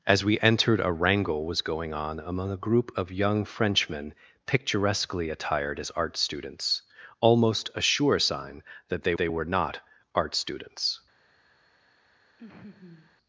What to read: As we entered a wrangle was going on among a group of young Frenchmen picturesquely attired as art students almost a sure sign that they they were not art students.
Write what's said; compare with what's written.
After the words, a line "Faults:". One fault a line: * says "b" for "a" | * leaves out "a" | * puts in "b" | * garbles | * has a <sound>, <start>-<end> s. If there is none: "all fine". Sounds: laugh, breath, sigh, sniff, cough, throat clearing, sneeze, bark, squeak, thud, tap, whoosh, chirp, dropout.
As we entered a wrangle was going on among a group of young Frenchmen picturesquely attired as art students almost a sure sign that they they were not art students.
Faults:
* has a laugh, 12.4-13.2 s